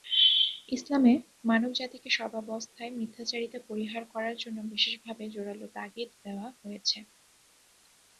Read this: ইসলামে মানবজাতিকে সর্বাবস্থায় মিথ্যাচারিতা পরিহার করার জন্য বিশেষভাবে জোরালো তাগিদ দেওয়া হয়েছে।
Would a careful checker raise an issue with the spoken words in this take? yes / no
no